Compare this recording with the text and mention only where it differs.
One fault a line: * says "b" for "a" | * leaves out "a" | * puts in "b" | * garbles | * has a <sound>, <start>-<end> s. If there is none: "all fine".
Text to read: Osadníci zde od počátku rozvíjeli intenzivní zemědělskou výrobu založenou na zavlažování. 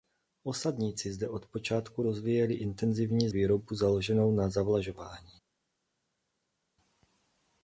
* leaves out "zemědělskou"